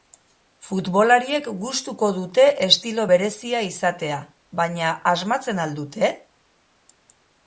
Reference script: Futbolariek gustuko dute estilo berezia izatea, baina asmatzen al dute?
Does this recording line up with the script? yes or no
yes